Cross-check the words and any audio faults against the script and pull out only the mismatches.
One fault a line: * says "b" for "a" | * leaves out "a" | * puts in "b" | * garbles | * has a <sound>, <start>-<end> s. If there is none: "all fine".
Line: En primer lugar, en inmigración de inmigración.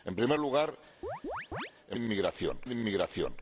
* has a chirp, 1.0-1.7 s